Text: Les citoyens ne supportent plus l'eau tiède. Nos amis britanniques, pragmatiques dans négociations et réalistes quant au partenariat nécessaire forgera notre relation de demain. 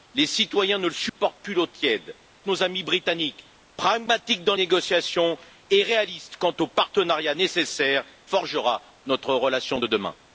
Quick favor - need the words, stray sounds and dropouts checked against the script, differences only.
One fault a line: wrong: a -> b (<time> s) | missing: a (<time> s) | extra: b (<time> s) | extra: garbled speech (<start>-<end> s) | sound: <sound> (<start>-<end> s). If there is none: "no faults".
sound: dropout (1.1-1.2 s)